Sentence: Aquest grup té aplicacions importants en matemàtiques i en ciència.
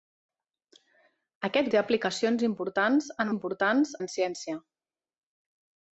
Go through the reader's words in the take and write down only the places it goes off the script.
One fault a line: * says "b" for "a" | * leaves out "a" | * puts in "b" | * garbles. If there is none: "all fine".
* leaves out "grup"
* says "importants" for "matemàtiques"